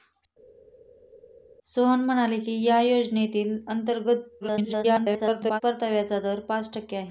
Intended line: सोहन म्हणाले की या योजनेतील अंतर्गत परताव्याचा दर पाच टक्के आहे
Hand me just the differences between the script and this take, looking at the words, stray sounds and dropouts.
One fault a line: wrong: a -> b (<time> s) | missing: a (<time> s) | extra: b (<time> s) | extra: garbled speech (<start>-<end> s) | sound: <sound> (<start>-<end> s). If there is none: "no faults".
extra: garbled speech (4.4-5.6 s)